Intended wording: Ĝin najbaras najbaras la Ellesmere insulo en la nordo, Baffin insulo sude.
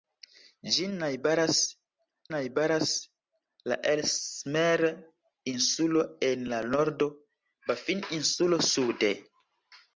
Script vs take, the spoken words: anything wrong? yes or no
no